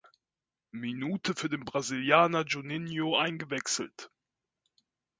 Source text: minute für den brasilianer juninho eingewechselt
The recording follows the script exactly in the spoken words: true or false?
true